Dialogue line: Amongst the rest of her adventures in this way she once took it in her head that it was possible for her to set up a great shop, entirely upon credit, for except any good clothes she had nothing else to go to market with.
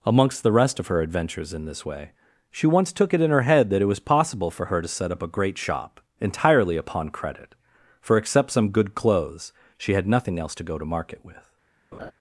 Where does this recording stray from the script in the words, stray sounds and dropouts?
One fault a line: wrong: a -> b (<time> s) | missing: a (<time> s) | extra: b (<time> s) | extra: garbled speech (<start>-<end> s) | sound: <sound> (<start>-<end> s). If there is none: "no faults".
wrong: any -> some (8.5 s)
sound: laugh (11.9-12.1 s)